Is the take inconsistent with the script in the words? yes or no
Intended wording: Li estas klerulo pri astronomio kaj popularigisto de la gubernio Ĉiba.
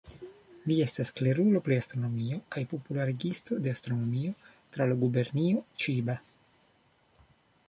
yes